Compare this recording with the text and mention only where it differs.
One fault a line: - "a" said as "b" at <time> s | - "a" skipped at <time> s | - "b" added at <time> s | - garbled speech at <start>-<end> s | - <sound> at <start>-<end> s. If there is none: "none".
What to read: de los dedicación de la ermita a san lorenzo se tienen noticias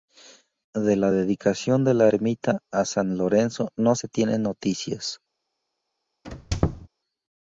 - "los" said as "la" at 0.9 s
- "no" added at 3.8 s
- squeak at 6.2-6.9 s